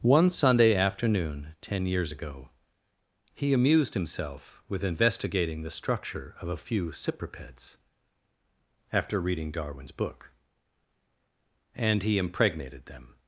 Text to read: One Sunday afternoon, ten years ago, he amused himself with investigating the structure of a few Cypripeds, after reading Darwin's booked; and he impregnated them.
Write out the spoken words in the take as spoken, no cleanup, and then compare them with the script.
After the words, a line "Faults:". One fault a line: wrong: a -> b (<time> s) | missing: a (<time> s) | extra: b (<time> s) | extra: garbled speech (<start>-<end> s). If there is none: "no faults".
One Sunday afternoon, ten years ago, he amused himself with investigating the structure of a few Cypripeds, after reading Darwin's book; and he impregnated them.
Faults:
wrong: booked -> book (9.9 s)